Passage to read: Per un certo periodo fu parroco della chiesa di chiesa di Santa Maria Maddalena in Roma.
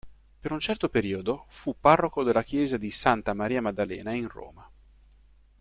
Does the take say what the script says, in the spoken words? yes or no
no